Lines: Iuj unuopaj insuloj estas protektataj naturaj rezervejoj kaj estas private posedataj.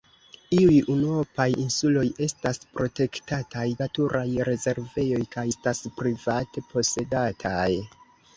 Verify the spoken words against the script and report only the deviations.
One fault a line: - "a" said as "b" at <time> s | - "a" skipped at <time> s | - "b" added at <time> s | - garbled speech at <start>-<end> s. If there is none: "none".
none